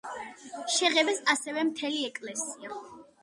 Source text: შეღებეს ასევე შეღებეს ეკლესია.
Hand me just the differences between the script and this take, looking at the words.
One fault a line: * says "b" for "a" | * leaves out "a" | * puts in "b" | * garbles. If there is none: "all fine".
* says "მთელი" for "შეღებეს"